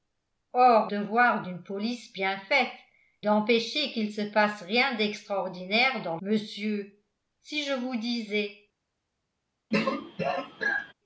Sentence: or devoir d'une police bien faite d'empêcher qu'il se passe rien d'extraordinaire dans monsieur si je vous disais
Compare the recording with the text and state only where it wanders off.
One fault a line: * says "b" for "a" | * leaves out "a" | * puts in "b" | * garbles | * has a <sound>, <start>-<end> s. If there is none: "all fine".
* has a throat clearing, 9.7-10.9 s